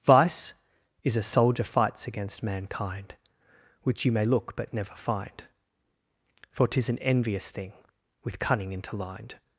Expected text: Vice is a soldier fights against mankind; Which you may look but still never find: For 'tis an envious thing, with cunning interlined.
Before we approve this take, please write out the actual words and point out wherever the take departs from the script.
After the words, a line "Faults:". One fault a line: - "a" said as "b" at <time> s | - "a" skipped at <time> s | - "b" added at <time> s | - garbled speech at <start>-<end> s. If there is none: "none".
Vice is a soldier fights against mankind; Which you may look but never find: For 'tis an envious thing, with cunning interlined.
Faults:
- "still" skipped at 4.7 s